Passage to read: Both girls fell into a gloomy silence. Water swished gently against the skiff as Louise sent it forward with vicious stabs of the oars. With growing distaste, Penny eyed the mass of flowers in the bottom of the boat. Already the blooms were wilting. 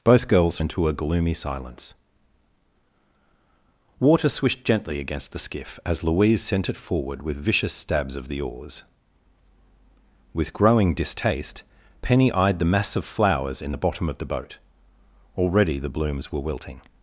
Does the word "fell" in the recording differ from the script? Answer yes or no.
yes